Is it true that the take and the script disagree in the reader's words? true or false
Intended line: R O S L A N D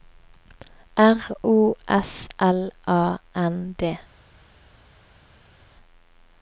false